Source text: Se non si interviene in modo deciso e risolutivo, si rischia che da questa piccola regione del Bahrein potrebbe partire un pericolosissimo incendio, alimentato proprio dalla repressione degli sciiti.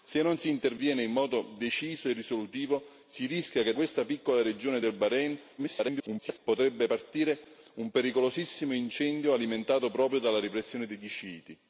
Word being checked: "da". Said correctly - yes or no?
no